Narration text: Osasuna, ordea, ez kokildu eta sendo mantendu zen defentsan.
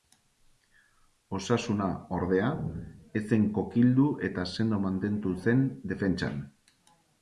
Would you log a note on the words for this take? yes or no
yes